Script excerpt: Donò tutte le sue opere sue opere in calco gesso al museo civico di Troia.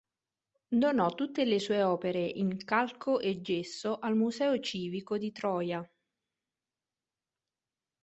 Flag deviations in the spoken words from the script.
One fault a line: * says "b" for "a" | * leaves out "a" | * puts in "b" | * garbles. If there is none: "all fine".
* leaves out "sue opere"
* puts in "e"